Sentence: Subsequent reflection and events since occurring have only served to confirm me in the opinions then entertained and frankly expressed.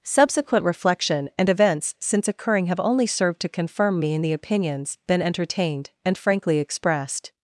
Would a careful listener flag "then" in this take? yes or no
yes